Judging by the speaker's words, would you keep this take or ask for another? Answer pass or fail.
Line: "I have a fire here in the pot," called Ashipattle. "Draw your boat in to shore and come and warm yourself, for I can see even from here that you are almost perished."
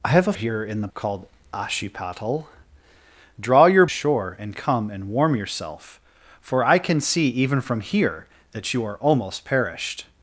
fail